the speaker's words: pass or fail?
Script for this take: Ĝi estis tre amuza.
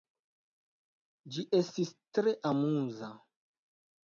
pass